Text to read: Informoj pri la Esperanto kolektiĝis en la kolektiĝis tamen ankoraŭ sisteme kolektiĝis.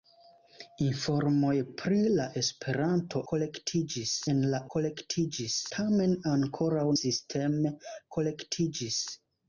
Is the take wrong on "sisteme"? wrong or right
right